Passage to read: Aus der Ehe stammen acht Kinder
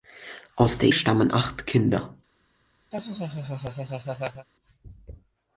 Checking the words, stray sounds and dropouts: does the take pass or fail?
fail